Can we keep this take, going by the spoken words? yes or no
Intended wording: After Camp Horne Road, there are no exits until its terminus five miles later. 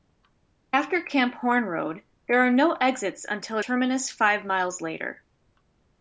no